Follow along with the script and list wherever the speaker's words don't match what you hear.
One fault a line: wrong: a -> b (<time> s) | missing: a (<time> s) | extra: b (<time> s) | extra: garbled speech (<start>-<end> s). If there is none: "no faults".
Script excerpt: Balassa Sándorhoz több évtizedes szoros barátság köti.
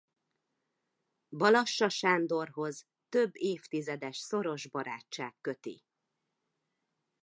no faults